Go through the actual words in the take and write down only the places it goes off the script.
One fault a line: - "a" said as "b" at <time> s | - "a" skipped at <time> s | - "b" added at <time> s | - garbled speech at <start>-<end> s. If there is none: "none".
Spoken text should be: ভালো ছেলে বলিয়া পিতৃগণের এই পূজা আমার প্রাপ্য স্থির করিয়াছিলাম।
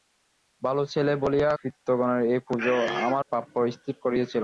none